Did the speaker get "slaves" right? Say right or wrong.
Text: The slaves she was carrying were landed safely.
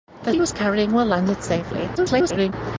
wrong